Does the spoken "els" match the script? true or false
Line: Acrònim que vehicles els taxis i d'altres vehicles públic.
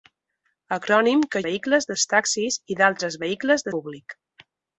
true